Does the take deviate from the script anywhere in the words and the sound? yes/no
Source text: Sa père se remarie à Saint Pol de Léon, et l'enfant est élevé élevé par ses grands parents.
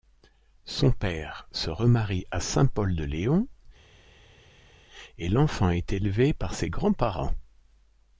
yes